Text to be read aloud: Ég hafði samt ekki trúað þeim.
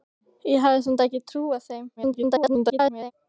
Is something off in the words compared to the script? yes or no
yes